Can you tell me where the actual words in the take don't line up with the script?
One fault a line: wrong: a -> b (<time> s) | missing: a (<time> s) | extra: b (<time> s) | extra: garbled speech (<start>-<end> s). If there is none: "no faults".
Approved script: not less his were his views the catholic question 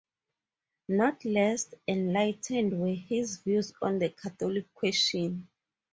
wrong: his -> enlightened (1.9 s)
extra: on (3.8 s)